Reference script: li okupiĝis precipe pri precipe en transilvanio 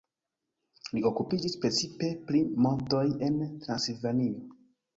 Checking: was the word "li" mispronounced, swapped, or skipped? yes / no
no